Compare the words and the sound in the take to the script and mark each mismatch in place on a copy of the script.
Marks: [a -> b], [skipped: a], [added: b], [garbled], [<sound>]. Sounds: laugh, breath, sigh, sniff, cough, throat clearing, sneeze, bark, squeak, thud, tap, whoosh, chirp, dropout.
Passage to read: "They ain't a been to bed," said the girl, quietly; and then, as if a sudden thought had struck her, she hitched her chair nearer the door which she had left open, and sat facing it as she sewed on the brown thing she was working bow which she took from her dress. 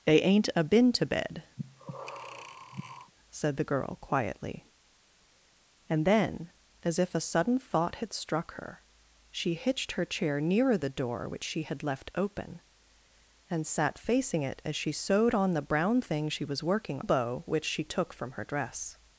"They ain't a been to bed," [breath] said the girl, quietly; and then, as if a sudden thought had struck her, she hitched her chair nearer the door which she had left open, and sat facing it as she sewed on the brown thing she was working bow which she took from her dress.